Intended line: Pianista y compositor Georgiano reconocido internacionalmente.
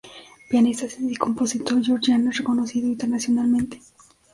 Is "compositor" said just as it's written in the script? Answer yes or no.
yes